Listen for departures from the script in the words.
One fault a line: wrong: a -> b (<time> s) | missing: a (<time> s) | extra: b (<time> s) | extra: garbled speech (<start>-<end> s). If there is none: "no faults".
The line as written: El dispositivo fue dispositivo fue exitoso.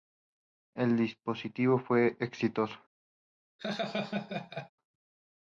missing: dispositivo fue (2.2 s)